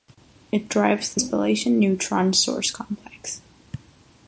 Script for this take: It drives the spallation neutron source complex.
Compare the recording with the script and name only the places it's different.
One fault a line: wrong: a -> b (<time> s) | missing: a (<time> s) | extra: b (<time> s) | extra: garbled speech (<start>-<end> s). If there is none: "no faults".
no faults